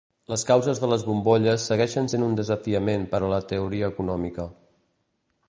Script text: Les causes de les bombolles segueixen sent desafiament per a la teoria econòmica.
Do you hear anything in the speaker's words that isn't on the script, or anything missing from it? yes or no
yes